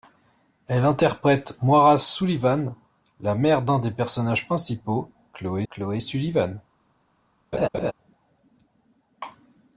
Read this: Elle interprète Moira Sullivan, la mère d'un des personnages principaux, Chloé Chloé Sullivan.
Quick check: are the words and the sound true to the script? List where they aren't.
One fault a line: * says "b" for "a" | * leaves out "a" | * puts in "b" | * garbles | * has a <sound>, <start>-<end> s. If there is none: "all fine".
* has a laugh, 7.5-7.9 s